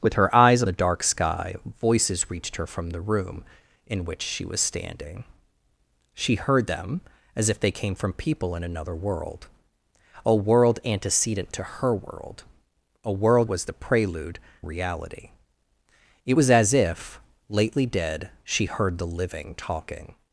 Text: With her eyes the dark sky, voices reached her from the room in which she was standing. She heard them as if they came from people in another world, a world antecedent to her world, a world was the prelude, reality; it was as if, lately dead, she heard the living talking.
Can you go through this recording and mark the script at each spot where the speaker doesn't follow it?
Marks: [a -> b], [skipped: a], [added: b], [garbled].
With her eyes the dark sky, voices reached her from the room in which she was standing. She heard them as if they came from people in another world, a world antecedent to her world, a world was the prelude, reality; it was as if, lately dead, she heard the living talking.